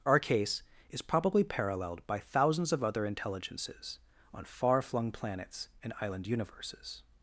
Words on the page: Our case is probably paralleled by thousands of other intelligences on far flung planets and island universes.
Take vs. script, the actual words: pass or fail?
pass